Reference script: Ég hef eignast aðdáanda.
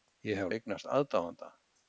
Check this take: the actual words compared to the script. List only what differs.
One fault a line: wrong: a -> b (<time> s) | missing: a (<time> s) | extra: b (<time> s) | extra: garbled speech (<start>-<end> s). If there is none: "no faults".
no faults